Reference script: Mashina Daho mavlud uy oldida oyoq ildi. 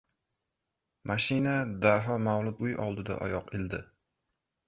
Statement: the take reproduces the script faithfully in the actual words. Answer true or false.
true